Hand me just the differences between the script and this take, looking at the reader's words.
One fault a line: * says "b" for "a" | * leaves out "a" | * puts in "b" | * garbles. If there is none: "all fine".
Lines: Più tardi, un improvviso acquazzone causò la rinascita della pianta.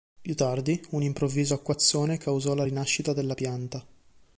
all fine